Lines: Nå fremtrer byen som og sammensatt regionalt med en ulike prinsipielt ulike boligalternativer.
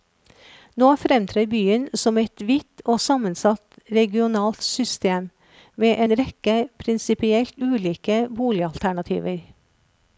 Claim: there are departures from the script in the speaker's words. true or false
true